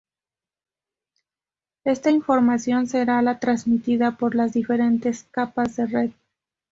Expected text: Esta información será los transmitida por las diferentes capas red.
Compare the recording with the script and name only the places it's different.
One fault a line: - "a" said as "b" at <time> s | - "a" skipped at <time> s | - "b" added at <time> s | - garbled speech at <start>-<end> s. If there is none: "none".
- "los" said as "la" at 3.2 s
- "de" added at 5.8 s